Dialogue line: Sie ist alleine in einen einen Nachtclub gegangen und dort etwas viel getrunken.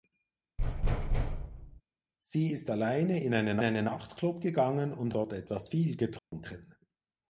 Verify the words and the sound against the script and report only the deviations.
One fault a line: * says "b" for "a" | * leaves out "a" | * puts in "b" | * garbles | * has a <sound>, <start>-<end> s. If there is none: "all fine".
* has a thud, 0.6-1.8 s
* has a dropout, 6.2-6.3 s